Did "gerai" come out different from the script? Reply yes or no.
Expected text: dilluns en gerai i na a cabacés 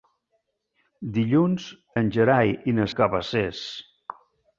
no